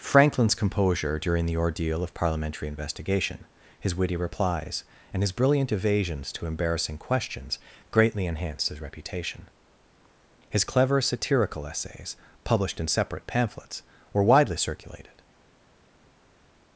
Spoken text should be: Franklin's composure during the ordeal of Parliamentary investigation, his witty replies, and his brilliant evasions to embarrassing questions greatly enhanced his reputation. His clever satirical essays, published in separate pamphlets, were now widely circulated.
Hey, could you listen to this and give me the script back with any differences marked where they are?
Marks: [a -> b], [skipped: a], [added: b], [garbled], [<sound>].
Franklin's composure during the ordeal of Parliamentary investigation, his witty replies, and his brilliant evasions to embarrassing questions greatly enhanced his reputation. His clever satirical essays, published in separate pamphlets, were [skipped: now] widely circulated.